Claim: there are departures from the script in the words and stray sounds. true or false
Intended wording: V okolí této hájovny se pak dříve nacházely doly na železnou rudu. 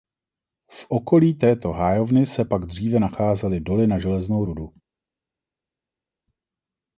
false